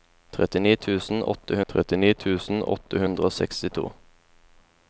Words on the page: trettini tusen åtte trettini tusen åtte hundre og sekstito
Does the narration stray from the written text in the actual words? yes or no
no